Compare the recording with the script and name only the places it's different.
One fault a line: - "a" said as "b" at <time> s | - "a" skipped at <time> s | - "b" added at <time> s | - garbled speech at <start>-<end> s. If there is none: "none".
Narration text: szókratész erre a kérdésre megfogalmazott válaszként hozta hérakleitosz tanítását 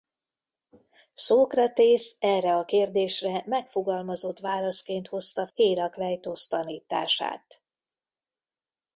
none